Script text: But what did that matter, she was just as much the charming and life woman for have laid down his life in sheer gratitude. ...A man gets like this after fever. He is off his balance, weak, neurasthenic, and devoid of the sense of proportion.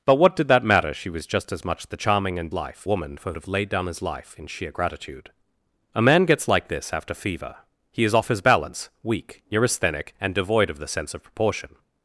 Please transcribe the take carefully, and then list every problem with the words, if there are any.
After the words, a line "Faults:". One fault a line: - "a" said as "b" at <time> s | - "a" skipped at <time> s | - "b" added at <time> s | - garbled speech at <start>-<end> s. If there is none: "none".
But what did that matter, she was just as much the charming and life woman for have laid down his life in sheer gratitude. ...A man gets like this after fever. He is off his balance, weak, neurasthenic, and devoid of the sense of proportion.
Faults:
none